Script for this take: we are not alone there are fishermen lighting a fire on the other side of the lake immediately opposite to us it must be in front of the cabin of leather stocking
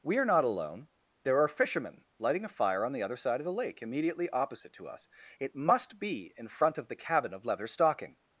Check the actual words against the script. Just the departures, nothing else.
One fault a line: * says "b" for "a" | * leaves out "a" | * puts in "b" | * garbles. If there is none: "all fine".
all fine